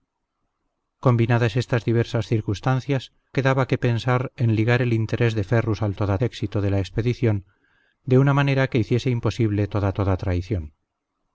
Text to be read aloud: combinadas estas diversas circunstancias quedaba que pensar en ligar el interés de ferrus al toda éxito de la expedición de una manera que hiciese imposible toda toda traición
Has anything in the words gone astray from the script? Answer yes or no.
no